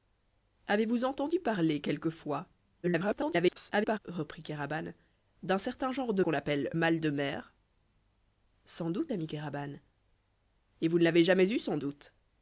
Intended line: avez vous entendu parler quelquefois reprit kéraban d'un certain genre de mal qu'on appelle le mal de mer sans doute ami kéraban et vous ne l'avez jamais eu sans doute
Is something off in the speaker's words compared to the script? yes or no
yes